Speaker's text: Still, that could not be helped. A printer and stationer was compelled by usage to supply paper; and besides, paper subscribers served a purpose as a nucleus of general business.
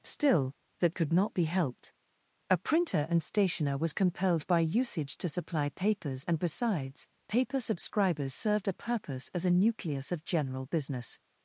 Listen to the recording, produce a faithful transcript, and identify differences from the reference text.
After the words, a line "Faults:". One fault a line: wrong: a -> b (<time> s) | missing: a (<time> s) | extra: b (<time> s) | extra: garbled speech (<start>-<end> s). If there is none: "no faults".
Still, that could not be helped. A printer and stationer was compelled by usage to supply papers; and besides, paper subscribers served a purpose as a nucleus of general business.
Faults:
wrong: paper -> papers (5.7 s)